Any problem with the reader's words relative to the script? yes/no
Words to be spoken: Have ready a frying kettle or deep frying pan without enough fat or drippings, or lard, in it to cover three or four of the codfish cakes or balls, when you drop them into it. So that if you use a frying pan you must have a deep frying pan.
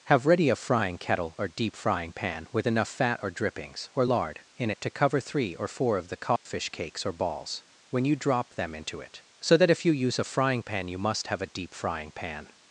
yes